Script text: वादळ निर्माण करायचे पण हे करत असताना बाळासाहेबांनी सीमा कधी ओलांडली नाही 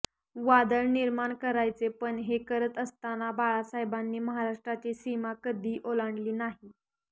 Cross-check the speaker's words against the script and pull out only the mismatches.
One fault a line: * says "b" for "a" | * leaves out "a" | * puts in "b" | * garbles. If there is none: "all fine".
* puts in "महाराष्ट्राची"